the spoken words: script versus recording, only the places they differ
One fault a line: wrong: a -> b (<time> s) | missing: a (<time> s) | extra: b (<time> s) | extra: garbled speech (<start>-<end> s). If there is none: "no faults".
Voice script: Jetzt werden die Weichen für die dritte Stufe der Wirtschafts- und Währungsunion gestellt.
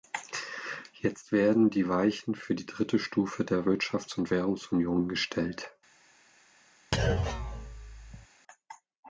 no faults